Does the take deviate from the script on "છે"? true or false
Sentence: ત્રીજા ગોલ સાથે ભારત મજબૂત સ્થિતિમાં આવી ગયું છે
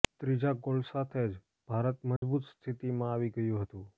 true